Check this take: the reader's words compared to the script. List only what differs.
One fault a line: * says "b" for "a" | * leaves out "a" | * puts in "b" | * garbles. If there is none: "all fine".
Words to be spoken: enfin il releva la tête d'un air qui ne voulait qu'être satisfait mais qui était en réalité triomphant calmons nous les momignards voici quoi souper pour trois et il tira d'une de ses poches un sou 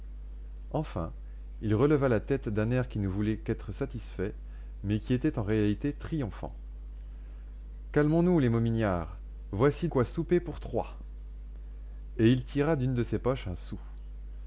all fine